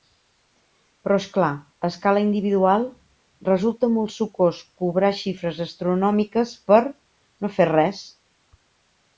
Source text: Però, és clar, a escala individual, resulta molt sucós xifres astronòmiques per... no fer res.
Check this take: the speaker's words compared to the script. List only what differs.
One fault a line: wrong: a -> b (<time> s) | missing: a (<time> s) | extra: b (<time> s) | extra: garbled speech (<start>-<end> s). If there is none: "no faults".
extra: cobrar (4.8 s)